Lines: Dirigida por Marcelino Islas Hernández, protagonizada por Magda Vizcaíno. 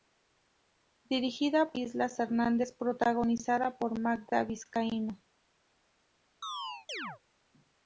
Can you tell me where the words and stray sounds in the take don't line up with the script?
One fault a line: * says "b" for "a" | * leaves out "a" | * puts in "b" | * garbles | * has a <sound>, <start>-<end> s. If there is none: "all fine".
* leaves out "por Marcelino"
* has a chirp, 6.4-7.2 s